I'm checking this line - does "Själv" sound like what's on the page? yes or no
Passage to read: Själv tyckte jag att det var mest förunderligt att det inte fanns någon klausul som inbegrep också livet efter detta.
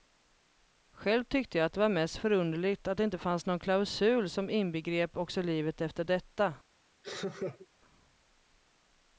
yes